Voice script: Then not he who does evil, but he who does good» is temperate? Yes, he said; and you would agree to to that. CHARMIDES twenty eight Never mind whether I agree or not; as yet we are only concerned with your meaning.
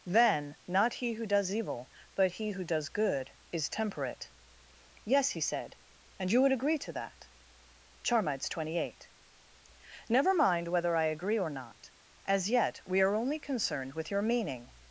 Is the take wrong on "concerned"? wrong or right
right